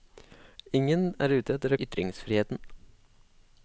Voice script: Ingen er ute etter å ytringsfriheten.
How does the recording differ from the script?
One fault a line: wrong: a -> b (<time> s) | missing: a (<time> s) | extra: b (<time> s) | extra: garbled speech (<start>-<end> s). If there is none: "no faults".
no faults